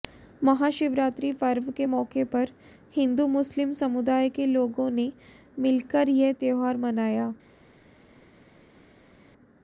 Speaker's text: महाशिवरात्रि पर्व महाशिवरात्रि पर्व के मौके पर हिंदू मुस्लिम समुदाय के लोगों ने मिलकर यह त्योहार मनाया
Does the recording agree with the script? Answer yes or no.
no